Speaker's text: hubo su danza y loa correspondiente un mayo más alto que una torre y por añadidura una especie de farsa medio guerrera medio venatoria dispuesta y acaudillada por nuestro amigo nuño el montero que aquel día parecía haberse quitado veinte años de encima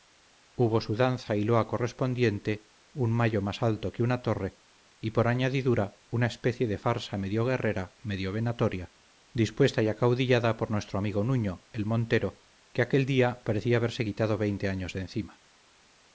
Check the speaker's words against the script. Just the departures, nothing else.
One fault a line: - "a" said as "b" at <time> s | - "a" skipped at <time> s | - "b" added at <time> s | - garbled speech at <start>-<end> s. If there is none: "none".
none